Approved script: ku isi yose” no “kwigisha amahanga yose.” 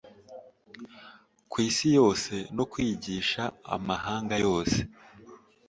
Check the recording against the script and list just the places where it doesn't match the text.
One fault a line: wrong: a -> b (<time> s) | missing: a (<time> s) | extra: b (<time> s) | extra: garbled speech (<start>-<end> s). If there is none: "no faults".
no faults